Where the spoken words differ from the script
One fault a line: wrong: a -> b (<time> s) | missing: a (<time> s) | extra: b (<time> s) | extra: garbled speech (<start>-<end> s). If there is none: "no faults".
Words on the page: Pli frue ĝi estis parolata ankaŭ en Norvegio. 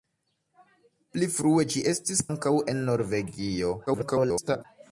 missing: parolata (2.2 s)
extra: garbled speech (3.9-4.6 s)